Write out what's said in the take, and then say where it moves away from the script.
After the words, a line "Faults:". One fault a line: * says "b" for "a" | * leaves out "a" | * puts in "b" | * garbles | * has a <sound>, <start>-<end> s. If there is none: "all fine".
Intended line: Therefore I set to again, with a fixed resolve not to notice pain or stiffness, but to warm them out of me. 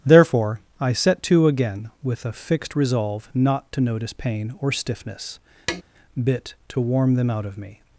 Therefore I set to again, with a fixed resolve not to notice pain or stiffness, bit to warm them out of me.
Faults:
* has a tap, 5.7-5.8 s
* says "bit" for "but"